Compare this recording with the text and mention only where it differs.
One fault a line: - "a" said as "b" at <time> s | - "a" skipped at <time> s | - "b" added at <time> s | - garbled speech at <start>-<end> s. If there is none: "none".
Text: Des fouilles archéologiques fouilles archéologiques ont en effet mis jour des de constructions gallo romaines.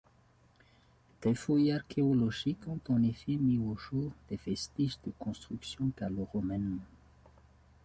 - "fouilles archéologiques" skipped at 2.7 s
- "au" added at 3.6 s
- "vestiges" added at 4.4 s